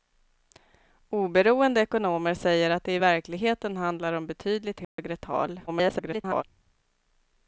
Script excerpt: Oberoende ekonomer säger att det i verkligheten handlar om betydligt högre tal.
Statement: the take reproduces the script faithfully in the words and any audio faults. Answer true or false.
false